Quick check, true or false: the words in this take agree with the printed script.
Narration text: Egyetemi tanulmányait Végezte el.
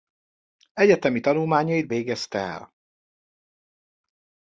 true